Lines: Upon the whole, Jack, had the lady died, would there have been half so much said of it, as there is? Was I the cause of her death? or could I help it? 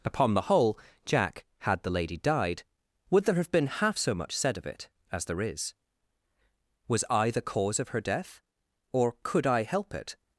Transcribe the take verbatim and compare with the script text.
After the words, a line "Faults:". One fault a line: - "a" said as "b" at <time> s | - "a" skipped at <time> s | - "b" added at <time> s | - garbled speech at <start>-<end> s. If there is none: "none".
Upon the whole, Jack, had the lady died, would there have been half so much said of it, as there is? Was I the cause of her death? or could I help it?
Faults:
none